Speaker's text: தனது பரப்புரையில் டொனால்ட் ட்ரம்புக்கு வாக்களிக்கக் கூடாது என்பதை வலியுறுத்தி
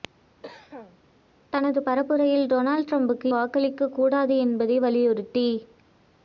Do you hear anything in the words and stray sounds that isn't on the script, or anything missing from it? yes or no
yes